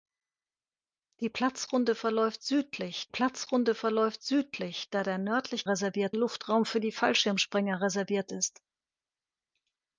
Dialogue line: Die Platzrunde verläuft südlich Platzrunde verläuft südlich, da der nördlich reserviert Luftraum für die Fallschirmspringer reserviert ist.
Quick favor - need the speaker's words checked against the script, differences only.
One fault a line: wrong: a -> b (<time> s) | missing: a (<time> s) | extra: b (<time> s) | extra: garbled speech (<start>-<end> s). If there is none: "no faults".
no faults